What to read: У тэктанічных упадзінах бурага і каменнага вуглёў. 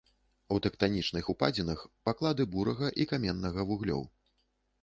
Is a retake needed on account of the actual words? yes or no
yes